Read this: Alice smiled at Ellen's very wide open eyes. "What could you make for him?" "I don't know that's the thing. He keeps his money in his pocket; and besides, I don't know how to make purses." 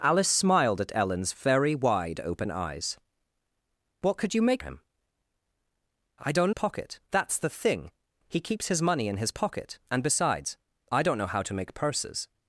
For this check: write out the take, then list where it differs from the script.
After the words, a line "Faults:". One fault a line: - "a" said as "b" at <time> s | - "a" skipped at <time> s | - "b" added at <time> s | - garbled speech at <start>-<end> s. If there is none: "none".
Alice smiled at Ellen's very wide open eyes. "What could you make him?" "I don't pocket that's the thing. He keeps his money in his pocket; and besides, I don't know how to make purses."
Faults:
- "for" skipped at 4.6 s
- "know" said as "pocket" at 6.5 s